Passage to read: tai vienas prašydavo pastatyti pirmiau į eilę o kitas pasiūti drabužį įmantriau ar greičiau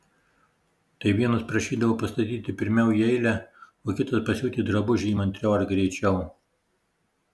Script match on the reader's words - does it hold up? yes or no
yes